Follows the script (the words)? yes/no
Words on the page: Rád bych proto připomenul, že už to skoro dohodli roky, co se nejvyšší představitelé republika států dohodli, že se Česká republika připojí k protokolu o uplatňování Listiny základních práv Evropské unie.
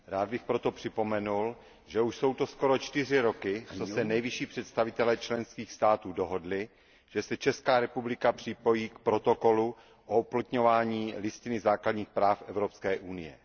no